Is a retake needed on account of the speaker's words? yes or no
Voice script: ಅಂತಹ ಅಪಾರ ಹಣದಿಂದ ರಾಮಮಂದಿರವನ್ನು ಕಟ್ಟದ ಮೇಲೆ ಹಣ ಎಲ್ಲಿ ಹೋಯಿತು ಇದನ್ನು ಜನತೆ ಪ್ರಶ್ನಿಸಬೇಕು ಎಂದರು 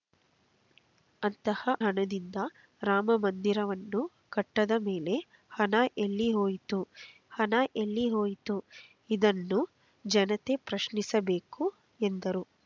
yes